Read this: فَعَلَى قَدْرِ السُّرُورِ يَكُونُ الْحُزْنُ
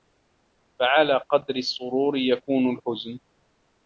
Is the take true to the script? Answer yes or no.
yes